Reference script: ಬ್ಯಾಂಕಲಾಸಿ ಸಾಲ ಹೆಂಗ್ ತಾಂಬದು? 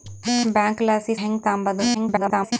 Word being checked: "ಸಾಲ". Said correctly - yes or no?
no